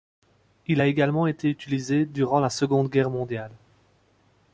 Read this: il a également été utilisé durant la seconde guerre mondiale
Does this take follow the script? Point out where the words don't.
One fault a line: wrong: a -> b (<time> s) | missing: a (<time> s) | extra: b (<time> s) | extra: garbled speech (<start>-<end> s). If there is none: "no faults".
no faults